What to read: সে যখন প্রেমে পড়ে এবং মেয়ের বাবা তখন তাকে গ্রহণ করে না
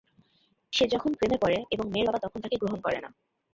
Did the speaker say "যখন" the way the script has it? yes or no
yes